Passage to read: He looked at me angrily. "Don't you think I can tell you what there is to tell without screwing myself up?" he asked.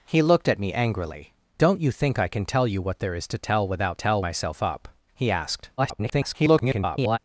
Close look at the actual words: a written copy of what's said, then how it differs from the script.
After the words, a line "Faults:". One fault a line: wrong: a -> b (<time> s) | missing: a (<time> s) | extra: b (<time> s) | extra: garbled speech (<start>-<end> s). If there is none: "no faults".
He looked at me angrily. "Don't you think I can tell you what there is to tell without tell myself up?" he asked. [garbled]
Faults:
wrong: screwing -> tell (3.9 s)
extra: garbled speech (5.8-7.2 s)